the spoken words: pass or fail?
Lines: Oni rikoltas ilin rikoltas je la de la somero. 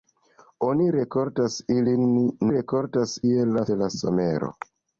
pass